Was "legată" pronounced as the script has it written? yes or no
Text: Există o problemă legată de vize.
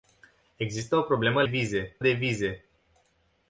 no